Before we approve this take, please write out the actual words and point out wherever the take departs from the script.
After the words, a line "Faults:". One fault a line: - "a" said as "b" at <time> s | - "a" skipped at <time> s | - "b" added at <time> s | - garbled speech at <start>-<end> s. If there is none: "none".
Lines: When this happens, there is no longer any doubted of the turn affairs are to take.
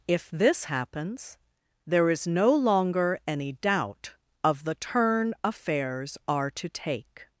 If this happens, there is no longer any doubt of the turn affairs are to take.
Faults:
- "When" said as "If" at 0.1 s
- "doubted" said as "doubt" at 3.5 s